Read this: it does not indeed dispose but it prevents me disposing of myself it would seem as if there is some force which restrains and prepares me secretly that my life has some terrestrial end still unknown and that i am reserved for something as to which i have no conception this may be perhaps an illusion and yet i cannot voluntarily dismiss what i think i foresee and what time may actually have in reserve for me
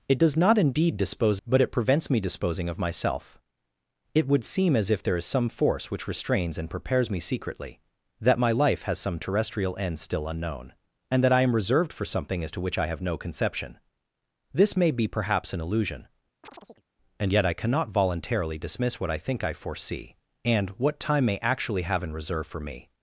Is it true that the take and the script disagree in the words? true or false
false